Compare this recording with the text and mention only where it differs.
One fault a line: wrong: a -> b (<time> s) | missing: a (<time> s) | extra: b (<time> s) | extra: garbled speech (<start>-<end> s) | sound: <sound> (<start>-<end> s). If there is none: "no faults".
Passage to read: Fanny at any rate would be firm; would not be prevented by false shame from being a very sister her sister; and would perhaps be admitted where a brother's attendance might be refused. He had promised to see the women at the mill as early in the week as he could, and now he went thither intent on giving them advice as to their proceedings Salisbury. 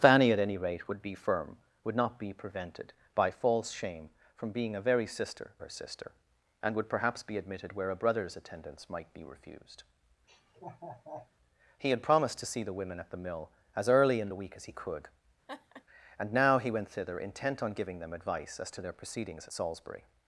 sound: laugh (10.3-11.3 s)
sound: laugh (15.5-15.8 s)